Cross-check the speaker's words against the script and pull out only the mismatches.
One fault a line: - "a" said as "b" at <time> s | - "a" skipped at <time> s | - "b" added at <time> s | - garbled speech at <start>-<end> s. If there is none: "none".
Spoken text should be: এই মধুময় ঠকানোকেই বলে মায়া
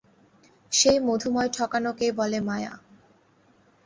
- "এই" said as "সেই" at 0.7 s